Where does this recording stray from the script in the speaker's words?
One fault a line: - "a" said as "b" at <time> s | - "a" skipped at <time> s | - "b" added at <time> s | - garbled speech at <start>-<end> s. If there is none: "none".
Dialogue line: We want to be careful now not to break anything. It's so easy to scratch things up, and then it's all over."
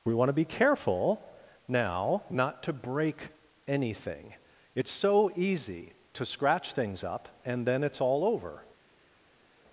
none